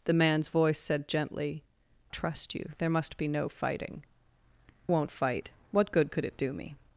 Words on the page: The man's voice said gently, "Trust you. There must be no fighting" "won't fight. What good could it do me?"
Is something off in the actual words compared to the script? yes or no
no